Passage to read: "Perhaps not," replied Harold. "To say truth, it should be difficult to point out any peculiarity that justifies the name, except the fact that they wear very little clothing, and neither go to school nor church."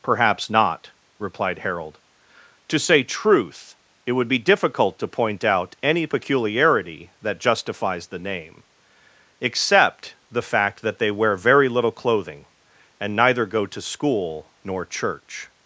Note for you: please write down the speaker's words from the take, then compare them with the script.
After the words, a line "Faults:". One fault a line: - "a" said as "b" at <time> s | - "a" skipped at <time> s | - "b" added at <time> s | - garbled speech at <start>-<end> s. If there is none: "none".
"Perhaps not," replied Harold. "To say truth, it would be difficult to point out any peculiarity that justifies the name, except the fact that they wear very little clothing, and neither go to school nor church."
Faults:
- "should" said as "would" at 4.1 s